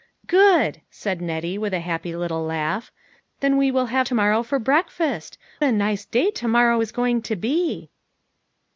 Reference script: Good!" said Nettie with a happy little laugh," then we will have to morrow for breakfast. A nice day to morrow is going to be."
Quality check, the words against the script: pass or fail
pass